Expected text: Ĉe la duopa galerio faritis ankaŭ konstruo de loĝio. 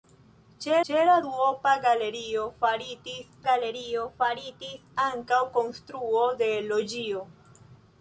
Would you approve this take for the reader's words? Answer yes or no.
no